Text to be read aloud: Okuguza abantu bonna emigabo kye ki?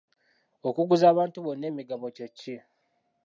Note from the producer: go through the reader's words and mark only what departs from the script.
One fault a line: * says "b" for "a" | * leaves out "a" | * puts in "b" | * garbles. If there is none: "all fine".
all fine